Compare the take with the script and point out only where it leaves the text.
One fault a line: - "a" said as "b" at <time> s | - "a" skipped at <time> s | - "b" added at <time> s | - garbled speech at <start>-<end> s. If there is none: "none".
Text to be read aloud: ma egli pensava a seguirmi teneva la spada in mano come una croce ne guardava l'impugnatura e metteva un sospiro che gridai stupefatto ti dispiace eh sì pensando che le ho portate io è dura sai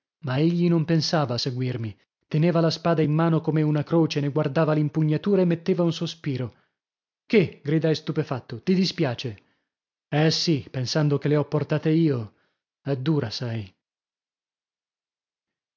- "non" added at 0.7 s